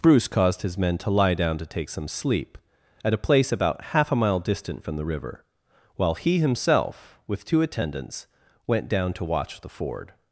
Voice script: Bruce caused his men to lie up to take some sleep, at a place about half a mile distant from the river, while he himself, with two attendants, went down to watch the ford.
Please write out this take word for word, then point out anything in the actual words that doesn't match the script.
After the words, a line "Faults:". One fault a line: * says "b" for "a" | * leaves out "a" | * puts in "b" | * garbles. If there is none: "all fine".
Bruce caused his men to lie down to take some sleep, at a place about half a mile distant from the river, while he himself, with two attendants, went down to watch the ford.
Faults:
* says "down" for "up"